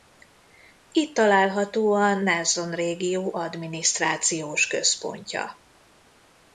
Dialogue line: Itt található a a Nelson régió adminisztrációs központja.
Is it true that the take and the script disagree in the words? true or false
true